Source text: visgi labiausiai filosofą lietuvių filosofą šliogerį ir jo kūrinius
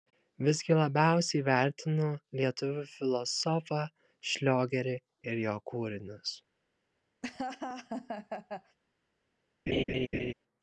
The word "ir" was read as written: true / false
true